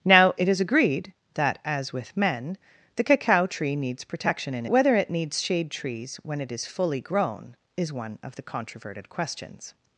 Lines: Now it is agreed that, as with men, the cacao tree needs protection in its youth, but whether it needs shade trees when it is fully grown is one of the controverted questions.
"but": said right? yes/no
no